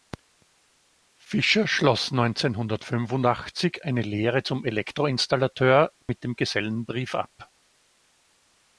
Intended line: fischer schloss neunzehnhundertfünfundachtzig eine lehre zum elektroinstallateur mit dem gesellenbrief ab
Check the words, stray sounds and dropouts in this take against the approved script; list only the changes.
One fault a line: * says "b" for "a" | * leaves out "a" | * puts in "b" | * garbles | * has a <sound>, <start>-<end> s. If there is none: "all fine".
* has a dropout, 6.0-6.1 s